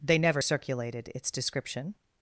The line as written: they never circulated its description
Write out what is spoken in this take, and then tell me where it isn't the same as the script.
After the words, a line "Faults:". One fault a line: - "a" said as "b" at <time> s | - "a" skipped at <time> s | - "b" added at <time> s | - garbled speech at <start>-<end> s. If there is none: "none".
they never circulated its description
Faults:
none